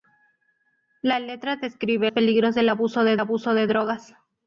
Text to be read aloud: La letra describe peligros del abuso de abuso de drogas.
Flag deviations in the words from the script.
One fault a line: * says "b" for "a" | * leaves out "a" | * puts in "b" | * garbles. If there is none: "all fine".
all fine